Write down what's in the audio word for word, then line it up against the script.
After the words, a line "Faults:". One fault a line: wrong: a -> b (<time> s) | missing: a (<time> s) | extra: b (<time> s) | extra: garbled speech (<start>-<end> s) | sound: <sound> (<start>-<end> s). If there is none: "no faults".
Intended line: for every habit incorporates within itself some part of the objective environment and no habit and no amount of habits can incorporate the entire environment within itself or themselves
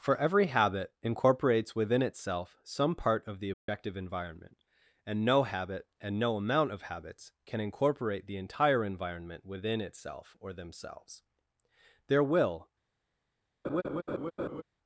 for every habit incorporates within itself some part of the objective environment and no habit and no amount of habits can incorporate the entire environment within itself or themselves there will
Faults:
sound: dropout (3.5-3.7 s)
extra: there will (12.1 s)
sound: laugh (13.6-14.6 s)